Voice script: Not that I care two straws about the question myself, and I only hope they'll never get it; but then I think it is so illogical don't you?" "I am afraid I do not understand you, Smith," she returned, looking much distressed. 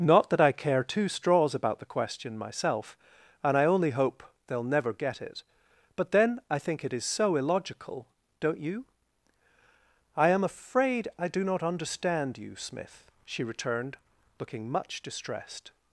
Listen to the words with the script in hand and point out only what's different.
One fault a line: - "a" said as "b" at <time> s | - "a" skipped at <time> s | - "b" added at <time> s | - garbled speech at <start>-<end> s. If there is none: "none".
none